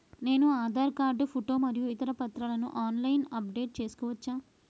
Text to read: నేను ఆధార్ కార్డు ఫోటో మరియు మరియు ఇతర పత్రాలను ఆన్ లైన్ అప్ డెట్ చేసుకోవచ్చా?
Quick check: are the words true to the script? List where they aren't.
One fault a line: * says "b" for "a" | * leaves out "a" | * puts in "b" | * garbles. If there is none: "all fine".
* leaves out "మరియు"